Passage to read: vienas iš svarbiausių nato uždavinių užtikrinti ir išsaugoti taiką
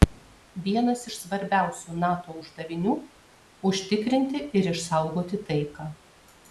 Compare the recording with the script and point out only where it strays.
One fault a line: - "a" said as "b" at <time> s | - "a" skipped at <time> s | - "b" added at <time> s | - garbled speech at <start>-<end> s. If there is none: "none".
none